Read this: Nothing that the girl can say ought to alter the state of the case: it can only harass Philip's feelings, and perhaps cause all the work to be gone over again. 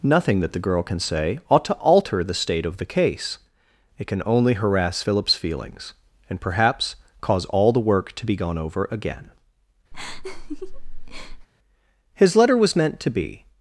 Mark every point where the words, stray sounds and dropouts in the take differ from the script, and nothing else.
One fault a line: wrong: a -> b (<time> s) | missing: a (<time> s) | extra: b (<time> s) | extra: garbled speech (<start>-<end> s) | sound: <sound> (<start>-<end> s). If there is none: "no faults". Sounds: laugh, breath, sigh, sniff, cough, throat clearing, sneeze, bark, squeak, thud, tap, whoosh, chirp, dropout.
sound: laugh (9.9-11.5 s)
extra: His letter was meant to be (12.1 s)